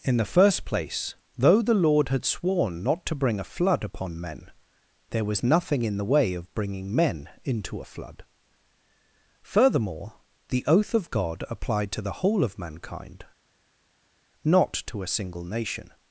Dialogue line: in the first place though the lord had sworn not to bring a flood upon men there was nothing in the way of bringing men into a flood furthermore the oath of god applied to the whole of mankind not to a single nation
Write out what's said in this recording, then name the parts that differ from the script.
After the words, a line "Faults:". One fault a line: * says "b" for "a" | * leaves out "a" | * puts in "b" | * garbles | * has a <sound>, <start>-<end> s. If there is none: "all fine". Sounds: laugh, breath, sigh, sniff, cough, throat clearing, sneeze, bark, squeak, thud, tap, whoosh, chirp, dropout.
in the first place though the lord had sworn not to bring a flood upon men there was nothing in the way of bringing men into a flood furthermore the oath of god applied to the whole of mankind not to a single nation
Faults:
all fine